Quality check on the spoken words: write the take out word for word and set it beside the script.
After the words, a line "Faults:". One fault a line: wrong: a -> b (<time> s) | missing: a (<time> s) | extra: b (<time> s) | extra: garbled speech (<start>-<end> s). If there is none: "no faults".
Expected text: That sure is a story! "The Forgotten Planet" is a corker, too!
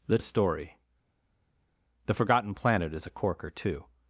That a story! "The Forgotten Planet" is a corker, too!
Faults:
missing: sure is (0.2 s)